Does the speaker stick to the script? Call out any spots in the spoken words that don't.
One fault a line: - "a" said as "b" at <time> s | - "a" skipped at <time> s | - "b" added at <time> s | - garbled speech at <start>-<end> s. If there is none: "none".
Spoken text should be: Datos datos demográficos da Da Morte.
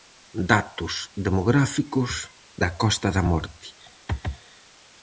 - "datos" skipped at 0.9 s
- "Costa" added at 2.8 s